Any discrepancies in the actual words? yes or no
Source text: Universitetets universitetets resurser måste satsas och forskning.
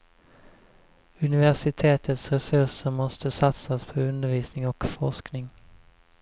yes